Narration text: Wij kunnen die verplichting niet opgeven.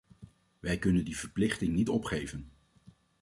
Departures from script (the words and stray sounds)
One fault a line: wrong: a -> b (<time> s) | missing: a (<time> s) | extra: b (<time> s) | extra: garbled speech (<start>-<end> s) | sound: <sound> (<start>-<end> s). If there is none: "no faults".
no faults